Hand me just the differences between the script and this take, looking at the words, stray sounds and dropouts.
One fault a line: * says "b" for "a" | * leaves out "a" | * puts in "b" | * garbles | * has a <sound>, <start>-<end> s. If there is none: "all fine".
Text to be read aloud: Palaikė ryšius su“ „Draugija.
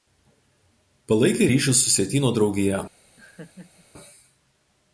* puts in "Sietyno"
* has a laugh, 3.2-3.9 s